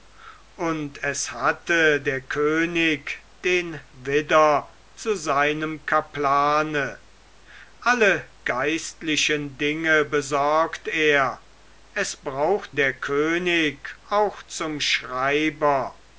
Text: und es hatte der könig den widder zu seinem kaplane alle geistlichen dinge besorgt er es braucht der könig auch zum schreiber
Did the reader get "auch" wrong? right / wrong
right